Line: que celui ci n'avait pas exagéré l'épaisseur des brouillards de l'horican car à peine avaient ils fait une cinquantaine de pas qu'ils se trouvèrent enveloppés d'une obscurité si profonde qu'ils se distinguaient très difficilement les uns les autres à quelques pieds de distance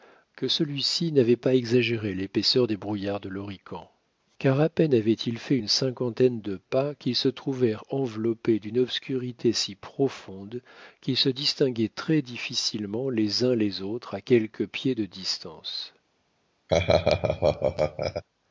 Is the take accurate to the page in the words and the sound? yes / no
no